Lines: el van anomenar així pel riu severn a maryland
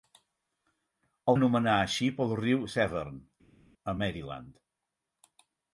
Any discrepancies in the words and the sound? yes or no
yes